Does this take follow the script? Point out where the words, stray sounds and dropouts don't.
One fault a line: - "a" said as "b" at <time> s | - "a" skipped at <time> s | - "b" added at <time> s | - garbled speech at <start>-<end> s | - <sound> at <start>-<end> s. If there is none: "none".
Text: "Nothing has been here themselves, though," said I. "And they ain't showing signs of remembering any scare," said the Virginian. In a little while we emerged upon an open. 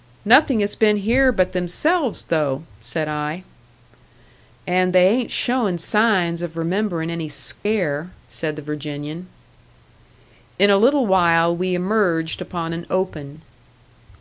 - "but" added at 1.3 s
- dropout at 7.6-7.7 s